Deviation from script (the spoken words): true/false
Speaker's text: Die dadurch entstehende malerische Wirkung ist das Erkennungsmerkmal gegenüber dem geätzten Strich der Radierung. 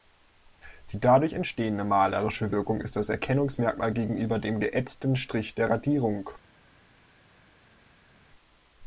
false